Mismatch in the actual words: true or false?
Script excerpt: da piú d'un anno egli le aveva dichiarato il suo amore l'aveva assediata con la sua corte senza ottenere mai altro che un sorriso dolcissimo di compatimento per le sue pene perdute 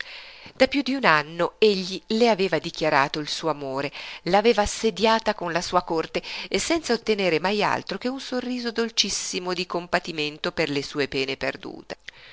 false